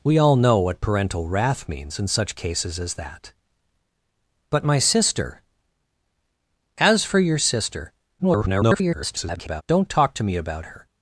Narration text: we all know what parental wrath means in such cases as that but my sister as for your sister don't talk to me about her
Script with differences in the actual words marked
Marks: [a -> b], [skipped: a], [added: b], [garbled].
we all know what parental wrath means in such cases as that but my sister as for your sister [garbled] don't talk to me about her